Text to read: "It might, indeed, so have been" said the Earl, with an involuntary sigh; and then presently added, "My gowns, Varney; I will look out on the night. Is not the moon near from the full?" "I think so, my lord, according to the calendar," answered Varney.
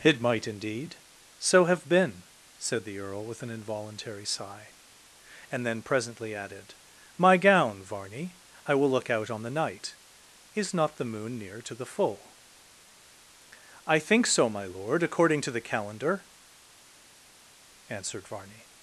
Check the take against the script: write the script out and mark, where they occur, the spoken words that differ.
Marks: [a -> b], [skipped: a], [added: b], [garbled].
"It might, indeed, so have been" said the Earl, with an involuntary sigh; and then presently added, "My [gowns, -> gown] Varney; I will look out on the night. Is not the moon near [from -> to] the full?" "I think so, my lord, according to the calendar," answered Varney.